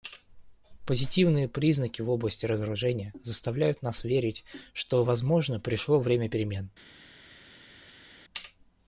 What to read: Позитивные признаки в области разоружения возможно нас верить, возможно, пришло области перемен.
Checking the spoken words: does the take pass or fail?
fail